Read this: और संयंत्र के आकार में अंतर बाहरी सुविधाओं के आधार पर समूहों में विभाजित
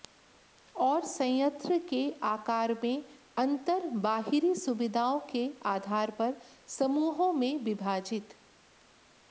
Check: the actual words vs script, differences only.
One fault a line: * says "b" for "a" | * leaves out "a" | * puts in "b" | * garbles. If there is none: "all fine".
all fine